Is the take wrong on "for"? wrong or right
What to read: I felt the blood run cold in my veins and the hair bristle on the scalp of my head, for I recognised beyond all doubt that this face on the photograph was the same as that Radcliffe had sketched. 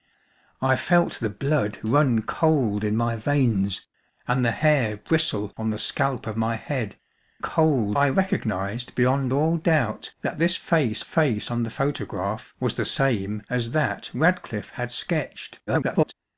wrong